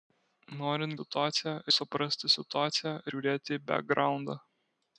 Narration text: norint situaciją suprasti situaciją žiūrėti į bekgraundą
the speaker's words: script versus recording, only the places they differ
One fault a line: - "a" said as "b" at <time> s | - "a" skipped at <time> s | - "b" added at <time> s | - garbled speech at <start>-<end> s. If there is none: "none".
none